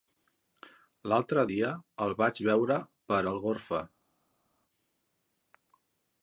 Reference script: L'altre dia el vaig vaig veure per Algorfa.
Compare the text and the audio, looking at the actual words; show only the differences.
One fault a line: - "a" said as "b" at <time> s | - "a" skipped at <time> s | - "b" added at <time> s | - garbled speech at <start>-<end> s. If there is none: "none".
- "vaig" skipped at 2.4 s